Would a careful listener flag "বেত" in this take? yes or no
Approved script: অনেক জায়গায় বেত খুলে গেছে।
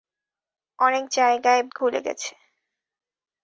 yes